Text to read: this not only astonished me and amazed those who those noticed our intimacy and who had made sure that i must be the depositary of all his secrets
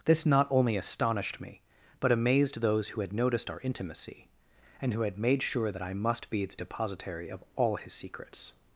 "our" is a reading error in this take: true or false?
false